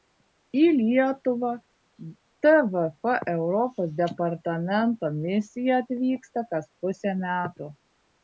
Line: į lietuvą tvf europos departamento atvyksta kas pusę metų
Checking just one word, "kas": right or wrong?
right